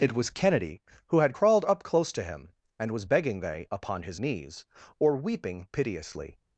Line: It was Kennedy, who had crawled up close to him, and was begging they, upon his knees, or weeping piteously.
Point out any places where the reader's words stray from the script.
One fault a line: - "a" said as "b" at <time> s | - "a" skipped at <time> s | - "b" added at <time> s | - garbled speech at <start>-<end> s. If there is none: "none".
none